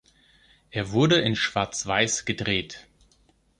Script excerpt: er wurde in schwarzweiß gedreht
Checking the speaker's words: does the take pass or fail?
pass